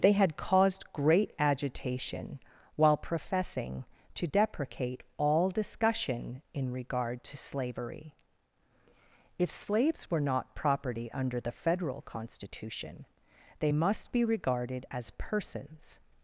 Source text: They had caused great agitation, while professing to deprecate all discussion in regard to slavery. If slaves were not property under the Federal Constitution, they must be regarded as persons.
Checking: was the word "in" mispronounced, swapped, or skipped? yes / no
no